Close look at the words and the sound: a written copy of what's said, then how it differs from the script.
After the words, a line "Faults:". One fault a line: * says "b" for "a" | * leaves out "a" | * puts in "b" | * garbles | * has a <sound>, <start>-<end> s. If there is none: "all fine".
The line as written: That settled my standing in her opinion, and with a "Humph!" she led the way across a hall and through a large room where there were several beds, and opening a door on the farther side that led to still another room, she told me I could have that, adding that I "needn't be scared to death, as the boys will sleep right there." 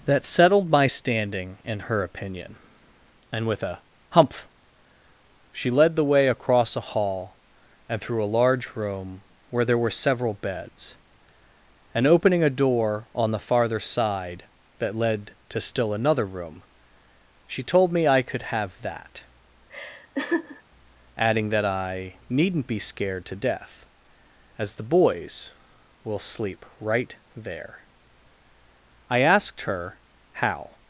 That settled my standing in her opinion, and with a "Humph!" she led the way across a hall and through a large room where there were several beds, and opening a door on the farther side that led to still another room, she told me I could have that, adding that I "needn't be scared to death, as the boys will sleep right there." I asked her how
Faults:
* has a laugh, 19.7-20.6 s
* puts in "I asked her how"